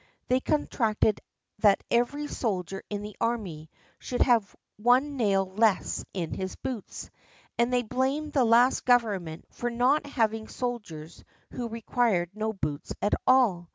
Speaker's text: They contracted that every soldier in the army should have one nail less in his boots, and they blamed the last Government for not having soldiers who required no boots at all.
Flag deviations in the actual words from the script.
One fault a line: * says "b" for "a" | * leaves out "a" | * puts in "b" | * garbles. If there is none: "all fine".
all fine